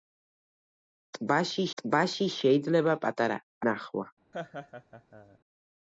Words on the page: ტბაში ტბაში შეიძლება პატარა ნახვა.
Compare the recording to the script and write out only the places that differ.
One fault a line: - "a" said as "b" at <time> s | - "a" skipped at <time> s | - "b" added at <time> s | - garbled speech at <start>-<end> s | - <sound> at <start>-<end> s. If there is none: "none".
- laugh at 4.3-5.4 s